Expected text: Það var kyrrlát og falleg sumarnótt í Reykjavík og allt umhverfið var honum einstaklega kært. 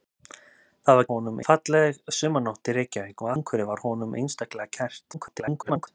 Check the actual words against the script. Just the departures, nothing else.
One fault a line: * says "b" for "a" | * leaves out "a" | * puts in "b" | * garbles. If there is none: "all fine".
* says "honum" for "kyrrlát"
* leaves out "allt"
* garbles